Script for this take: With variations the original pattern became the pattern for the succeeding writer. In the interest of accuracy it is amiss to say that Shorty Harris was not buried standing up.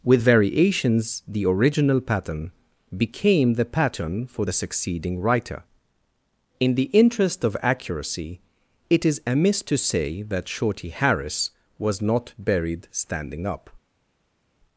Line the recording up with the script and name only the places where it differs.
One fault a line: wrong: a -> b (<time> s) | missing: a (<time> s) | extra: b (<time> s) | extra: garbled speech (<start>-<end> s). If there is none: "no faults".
no faults